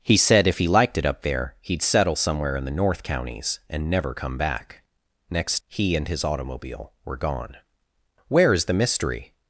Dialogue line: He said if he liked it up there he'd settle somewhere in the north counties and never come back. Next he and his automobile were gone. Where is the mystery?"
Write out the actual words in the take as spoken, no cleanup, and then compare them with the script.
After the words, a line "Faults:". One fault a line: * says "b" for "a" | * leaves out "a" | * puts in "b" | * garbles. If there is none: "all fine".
He said if he liked it up there he'd settle somewhere in the north counties and never come back. Next he and his automobile were gone. Where is the mystery?"
Faults:
all fine